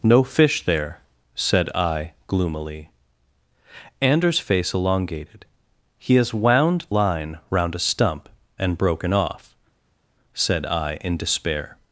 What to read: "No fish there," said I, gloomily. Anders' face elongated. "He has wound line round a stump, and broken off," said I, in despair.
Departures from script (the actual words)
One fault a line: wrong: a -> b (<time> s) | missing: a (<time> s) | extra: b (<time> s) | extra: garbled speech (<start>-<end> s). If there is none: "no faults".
no faults